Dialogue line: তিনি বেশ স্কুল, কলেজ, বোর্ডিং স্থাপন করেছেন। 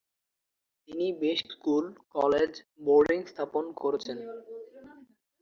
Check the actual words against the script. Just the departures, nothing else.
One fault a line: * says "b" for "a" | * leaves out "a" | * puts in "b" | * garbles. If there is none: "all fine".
all fine